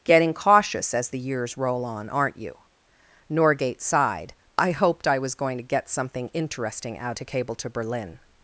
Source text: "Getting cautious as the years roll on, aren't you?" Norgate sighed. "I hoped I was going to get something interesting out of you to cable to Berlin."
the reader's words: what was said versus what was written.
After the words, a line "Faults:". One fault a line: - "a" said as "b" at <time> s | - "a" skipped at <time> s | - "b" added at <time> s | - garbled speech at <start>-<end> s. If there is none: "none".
"Getting cautious as the years roll on, aren't you?" Norgate sighed. "I hoped I was going to get something interesting out to cable to Berlin."
Faults:
- "of you" skipped at 7.2 s